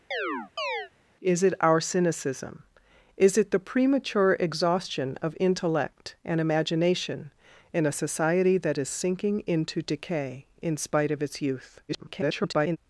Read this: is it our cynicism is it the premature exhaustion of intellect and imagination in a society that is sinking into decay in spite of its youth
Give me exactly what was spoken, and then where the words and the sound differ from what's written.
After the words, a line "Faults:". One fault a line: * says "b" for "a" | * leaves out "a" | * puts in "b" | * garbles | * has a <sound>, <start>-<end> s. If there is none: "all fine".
is it our cynicism is it the premature exhaustion of intellect and imagination in a society that is sinking into decay in spite of its youth [garbled]
Faults:
* has a chirp, 0.1-0.9 s
* garbles